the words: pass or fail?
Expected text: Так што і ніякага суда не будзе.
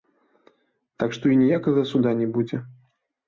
pass